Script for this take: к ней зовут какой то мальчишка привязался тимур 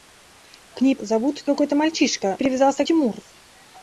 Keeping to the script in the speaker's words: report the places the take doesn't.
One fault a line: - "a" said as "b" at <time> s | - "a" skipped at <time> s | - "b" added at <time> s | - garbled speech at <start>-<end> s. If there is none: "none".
none